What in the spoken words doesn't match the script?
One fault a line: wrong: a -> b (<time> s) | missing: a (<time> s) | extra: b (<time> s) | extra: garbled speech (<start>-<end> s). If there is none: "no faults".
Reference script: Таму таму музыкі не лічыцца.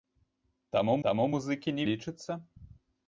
no faults